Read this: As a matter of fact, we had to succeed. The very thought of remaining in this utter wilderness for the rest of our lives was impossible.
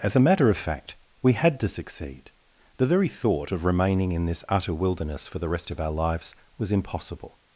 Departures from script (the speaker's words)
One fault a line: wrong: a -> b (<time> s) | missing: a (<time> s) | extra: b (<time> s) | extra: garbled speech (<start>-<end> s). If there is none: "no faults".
no faults